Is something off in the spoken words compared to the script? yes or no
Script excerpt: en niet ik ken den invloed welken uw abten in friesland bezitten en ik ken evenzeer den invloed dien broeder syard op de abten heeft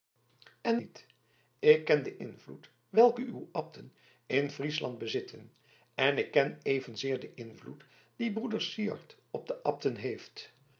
no